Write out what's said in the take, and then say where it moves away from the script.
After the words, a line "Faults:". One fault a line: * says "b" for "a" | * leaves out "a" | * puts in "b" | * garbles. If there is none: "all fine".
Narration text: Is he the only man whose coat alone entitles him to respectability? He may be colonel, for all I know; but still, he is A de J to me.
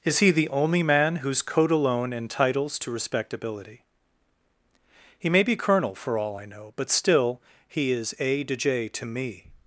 Is he the only man whose coat alone entitles to respectability? He may be colonel, for all I know; but still, he is A de J to me.
Faults:
* leaves out "him"